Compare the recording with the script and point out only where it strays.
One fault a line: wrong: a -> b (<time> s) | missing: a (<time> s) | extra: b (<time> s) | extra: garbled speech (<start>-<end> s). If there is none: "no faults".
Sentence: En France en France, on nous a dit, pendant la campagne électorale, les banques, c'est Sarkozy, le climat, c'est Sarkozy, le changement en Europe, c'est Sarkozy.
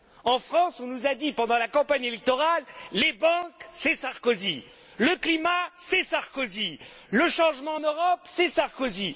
missing: en France (0.8 s)